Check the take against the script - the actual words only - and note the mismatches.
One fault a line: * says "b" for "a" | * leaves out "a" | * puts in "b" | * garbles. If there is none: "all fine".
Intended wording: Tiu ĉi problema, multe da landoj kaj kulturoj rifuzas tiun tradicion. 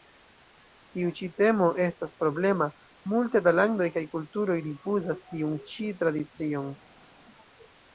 * puts in "temo estas"
* puts in "ĉi"